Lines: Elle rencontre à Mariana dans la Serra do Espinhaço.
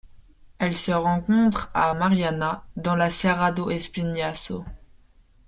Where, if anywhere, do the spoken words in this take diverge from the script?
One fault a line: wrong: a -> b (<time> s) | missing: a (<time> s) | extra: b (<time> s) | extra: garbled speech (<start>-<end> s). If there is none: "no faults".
extra: se (0.8 s)